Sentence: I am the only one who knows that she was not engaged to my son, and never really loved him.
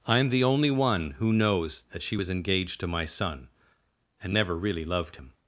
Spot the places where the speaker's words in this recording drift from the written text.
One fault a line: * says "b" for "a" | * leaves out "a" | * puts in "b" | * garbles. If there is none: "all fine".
* leaves out "not"